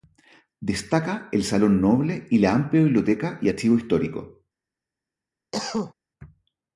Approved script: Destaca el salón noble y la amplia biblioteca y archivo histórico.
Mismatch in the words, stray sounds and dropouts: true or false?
true